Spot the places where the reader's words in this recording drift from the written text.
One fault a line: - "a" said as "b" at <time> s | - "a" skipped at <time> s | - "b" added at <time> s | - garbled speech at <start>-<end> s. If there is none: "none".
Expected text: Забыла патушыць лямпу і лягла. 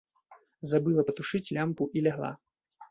none